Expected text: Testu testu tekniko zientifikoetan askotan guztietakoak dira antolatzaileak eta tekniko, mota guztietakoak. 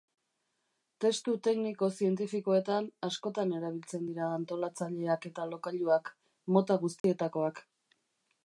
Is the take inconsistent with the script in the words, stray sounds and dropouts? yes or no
yes